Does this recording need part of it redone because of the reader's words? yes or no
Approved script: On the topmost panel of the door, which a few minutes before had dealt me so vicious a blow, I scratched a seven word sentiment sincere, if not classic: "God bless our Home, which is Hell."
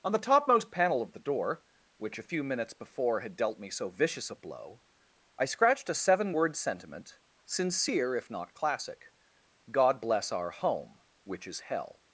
no